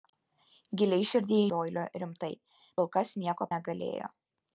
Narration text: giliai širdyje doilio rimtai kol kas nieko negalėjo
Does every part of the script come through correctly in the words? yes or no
yes